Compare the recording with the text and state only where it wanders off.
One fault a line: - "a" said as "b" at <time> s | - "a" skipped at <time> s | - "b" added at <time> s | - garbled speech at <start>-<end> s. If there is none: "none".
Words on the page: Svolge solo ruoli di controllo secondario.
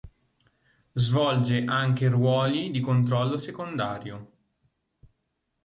- "solo" said as "anche" at 1.6 s